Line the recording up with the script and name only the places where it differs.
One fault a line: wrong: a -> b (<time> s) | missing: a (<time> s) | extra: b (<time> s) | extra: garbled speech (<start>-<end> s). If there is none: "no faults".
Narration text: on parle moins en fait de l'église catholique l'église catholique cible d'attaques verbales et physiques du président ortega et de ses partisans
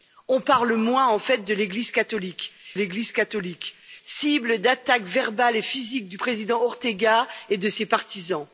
no faults